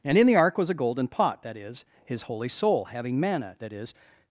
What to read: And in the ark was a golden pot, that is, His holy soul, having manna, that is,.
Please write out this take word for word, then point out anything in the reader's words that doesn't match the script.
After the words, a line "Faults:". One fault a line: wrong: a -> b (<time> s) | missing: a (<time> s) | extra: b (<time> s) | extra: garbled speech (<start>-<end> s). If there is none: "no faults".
And in the ark was a golden pot, that is, His holy soul, having manna, that is,.
Faults:
no faults